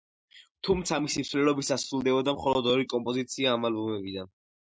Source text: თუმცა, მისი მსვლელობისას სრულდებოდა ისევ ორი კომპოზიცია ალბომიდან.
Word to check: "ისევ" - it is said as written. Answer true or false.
false